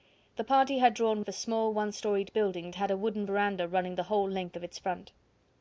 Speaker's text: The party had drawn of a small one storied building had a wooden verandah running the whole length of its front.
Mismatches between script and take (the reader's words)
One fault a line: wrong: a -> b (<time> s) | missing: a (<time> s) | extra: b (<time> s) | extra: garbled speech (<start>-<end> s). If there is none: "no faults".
no faults